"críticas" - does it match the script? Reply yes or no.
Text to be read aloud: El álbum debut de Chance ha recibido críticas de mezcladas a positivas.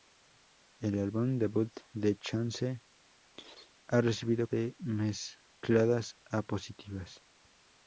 no